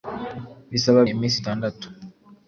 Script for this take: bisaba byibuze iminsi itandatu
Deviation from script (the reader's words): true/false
true